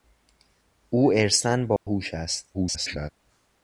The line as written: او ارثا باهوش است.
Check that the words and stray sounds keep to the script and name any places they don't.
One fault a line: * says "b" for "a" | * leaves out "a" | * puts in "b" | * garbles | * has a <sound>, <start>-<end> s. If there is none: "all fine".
* has a dropout, 1.8-1.9 s
* garbles